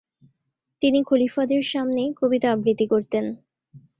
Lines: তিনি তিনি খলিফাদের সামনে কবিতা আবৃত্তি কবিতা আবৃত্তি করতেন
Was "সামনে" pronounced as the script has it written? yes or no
yes